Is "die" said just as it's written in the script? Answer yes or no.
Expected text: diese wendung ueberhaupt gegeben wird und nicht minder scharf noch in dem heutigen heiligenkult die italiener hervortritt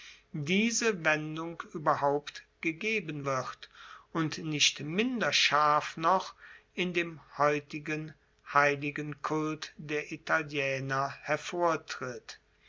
no